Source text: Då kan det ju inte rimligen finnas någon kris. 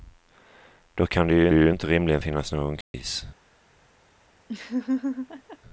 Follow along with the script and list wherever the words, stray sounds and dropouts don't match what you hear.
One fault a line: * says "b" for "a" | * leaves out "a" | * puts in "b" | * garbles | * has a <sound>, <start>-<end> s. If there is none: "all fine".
* puts in "ju"
* has a dropout, 2.8-2.9 s
* has a laugh, 4.5-5.6 s